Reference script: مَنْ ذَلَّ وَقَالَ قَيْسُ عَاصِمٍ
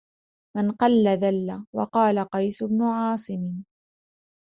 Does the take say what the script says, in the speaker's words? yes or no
no